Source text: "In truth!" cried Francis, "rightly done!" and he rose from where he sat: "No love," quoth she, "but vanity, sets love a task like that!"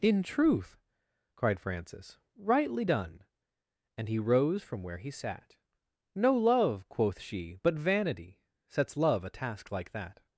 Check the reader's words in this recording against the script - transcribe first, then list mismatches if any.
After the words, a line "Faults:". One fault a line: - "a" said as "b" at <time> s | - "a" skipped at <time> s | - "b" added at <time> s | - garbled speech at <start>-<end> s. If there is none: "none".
"In truth!" cried Francis, "rightly done!" and he rose from where he sat: "No love," quoth she, "but vanity, sets love a task like that!"
Faults:
none